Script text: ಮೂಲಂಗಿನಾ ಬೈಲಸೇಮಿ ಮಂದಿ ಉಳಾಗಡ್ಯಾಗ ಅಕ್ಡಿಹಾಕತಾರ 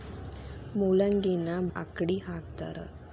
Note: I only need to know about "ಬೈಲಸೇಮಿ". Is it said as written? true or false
false